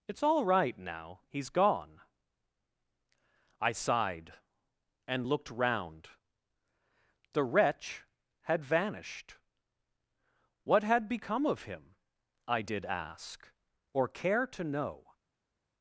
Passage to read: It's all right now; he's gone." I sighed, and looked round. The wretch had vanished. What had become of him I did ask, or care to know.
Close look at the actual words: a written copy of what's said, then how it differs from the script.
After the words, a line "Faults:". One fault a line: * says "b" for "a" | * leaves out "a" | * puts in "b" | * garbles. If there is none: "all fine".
It's all right now; he's gone." I sighed, and looked round. The wretch had vanished. What had become of him I did ask, or care to know.
Faults:
all fine